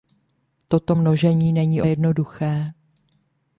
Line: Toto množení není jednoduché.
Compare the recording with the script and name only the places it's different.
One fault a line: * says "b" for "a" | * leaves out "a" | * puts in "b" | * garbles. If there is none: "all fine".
all fine